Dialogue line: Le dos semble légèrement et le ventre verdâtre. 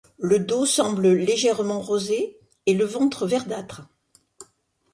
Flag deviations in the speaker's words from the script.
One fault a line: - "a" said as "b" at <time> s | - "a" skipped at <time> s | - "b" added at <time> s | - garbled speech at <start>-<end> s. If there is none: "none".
- "rosé" added at 1.8 s